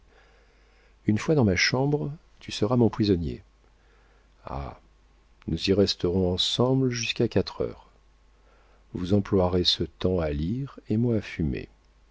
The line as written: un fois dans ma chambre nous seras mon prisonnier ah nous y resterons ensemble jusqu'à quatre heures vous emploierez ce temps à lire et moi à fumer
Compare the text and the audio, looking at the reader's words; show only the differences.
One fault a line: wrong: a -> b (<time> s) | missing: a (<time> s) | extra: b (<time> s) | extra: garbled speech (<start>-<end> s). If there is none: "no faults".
wrong: un -> une (1.1 s)
wrong: nous -> tu (2.4 s)